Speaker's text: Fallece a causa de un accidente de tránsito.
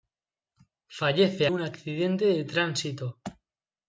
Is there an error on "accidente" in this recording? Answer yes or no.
no